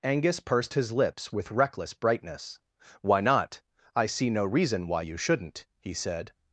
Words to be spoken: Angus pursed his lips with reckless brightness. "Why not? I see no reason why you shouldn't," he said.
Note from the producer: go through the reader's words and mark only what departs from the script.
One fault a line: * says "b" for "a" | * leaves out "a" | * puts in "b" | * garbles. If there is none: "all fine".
all fine